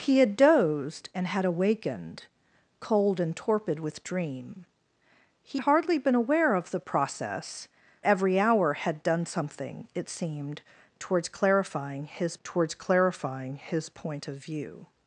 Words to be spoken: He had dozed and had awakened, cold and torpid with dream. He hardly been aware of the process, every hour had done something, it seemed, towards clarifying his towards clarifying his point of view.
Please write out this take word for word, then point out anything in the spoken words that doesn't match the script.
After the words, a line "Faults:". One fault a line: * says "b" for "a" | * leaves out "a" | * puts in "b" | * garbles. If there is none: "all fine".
He had dozed and had awakened, cold and torpid with dream. He hardly been aware of the process, every hour had done something, it seemed, towards clarifying his towards clarifying his point of view.
Faults:
all fine